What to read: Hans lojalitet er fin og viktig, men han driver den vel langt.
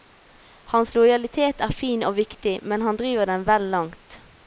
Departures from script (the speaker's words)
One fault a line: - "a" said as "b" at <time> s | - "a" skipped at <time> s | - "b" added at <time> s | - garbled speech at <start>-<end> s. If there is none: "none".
none